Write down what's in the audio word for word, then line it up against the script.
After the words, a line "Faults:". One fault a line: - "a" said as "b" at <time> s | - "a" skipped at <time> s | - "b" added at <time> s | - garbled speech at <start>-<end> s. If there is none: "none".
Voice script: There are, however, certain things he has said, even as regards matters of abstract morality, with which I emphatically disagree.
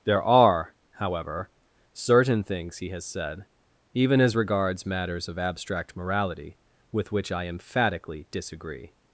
There are, however, certain things he has said, even as regards matters of abstract morality, with which I emphatically disagree.
Faults:
none